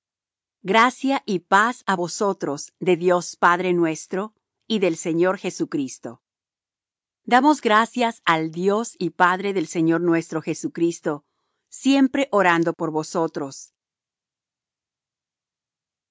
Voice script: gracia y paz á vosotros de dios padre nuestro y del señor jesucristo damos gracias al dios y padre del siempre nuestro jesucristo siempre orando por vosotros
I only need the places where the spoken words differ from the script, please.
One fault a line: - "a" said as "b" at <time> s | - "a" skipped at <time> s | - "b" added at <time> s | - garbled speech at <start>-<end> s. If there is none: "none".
- "siempre" said as "señor" at 9.7 s